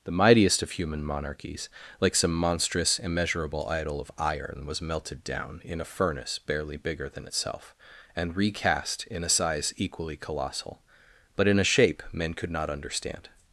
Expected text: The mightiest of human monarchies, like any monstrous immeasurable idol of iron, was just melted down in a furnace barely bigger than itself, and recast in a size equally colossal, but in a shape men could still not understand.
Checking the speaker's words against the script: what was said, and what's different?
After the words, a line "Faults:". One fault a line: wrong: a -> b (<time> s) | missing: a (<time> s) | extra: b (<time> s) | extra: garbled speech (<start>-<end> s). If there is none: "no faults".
The mightiest of human monarchies, like some monstrous immeasurable idol of iron, was melted down in a furnace barely bigger than itself, and recast in a size equally colossal, but in a shape men could not understand.
Faults:
wrong: any -> some (2.1 s)
missing: just (4.8 s)
missing: still (12.5 s)